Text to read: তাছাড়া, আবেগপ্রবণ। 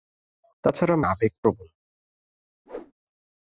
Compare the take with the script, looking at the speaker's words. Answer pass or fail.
pass